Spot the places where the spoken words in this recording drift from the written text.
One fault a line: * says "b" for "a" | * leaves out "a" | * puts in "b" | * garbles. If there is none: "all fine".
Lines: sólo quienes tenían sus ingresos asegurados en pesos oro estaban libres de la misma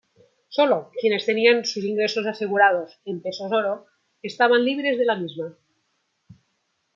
all fine